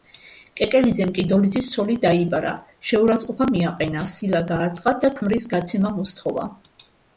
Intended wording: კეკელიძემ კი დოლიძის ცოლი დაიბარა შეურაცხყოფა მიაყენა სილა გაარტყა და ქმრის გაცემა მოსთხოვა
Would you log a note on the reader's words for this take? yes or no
no